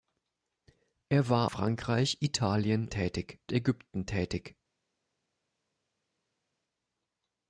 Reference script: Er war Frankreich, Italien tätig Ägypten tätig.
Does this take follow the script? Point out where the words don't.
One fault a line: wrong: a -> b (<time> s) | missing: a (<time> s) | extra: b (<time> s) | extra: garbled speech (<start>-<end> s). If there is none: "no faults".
no faults